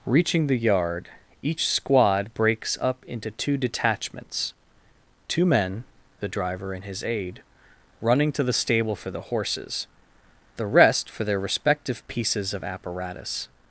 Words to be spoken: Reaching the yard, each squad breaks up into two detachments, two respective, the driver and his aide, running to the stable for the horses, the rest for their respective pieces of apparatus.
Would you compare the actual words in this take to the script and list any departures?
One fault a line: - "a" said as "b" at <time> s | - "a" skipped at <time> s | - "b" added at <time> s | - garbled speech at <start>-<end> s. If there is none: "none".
- "respective" said as "men" at 5.5 s